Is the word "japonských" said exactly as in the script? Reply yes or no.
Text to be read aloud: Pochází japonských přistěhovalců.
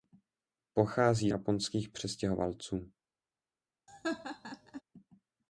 yes